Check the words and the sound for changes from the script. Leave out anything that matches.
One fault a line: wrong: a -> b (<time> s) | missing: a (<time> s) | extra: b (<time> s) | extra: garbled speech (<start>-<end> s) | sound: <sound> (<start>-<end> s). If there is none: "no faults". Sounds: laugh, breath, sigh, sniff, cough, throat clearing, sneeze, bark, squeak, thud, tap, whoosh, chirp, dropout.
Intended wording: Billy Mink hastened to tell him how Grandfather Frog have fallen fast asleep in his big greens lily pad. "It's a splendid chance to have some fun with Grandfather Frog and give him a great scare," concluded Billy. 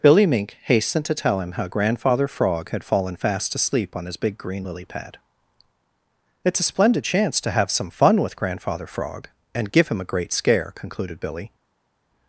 wrong: have -> had (2.7 s)
wrong: in -> on (4.0 s)
wrong: greens -> green (4.4 s)